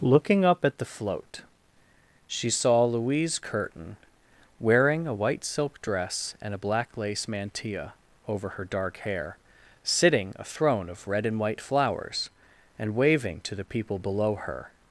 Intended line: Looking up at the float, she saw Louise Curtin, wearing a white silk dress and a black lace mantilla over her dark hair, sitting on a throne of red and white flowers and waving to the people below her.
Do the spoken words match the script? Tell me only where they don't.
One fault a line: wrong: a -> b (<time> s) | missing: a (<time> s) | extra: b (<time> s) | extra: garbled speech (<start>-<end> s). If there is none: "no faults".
missing: on (10.3 s)